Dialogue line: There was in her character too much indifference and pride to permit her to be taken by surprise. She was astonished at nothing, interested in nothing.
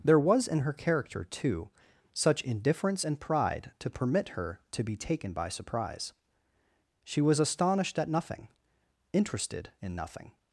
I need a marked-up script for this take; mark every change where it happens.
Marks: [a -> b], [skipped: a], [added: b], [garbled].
There was in her character too [much -> such] indifference and pride to permit her to be taken by surprise. She was astonished at nothing, interested in nothing.